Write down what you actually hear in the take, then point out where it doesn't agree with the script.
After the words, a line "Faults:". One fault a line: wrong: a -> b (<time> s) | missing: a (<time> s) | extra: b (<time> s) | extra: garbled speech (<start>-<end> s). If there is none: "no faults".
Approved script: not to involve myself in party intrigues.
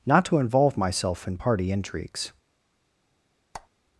not to involve myself in party intrigues.
Faults:
no faults